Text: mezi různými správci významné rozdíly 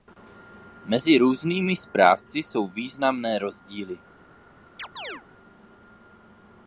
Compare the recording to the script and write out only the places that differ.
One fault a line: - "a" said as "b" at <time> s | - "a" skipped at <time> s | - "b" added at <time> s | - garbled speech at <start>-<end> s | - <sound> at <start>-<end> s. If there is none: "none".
- "jsou" added at 2.4 s
- chirp at 4.8-5.2 s